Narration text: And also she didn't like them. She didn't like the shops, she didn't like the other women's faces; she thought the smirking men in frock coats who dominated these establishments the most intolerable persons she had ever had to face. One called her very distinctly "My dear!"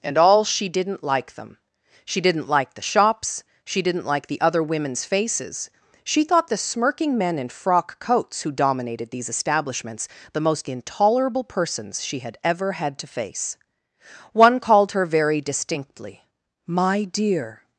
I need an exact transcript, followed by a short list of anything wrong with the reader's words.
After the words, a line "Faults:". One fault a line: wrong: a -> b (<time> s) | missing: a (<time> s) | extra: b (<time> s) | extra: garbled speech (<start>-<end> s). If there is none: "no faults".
And all she didn't like them. She didn't like the shops, she didn't like the other women's faces; she thought the smirking men in frock coats who dominated these establishments the most intolerable persons she had ever had to face. One called her very distinctly "My dear!"
Faults:
wrong: also -> all (0.2 s)